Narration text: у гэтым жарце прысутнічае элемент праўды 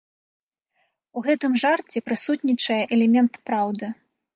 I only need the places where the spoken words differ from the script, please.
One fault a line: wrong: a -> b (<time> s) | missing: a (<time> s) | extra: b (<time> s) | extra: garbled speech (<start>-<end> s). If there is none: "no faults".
no faults